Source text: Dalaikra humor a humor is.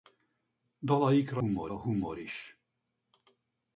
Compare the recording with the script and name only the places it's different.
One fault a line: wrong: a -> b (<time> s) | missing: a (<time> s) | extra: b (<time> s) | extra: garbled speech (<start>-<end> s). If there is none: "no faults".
no faults